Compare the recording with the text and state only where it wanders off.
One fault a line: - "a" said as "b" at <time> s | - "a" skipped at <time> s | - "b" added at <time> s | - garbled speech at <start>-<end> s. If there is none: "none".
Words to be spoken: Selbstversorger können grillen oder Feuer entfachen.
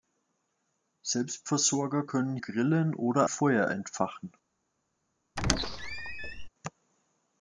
none